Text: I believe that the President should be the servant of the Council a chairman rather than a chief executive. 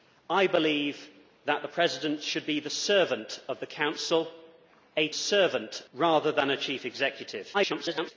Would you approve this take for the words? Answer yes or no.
no